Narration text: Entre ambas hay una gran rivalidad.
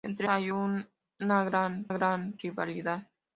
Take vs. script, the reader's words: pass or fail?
fail